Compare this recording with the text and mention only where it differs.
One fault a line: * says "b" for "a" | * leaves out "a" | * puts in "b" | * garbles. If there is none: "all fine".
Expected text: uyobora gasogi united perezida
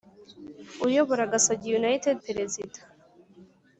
all fine